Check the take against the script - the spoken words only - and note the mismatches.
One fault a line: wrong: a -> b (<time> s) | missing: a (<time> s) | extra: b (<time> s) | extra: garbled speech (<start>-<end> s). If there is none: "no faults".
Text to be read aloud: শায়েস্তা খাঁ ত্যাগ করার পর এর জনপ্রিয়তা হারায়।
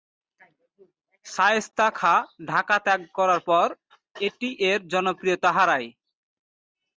extra: ঢাকা (2.5 s)
extra: এটি (4.2 s)